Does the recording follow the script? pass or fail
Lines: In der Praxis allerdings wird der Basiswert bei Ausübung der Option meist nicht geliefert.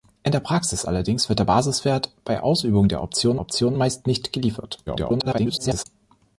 fail